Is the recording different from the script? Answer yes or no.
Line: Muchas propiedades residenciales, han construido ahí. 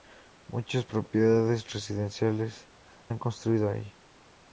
no